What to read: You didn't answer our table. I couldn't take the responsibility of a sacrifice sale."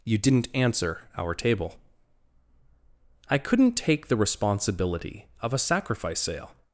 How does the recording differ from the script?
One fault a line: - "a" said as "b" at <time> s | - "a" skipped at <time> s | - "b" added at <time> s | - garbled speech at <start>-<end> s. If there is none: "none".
none